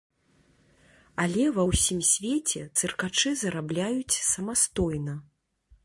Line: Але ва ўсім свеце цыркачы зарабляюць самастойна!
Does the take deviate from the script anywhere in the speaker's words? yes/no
no